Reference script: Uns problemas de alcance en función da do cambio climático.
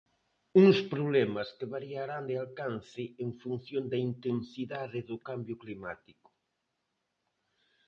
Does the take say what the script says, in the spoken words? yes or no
no